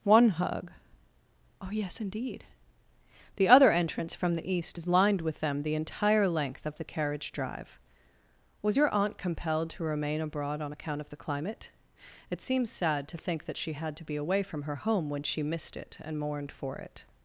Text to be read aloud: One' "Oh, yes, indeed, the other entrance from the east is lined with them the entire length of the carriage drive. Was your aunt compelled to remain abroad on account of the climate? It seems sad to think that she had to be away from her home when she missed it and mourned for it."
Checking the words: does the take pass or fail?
fail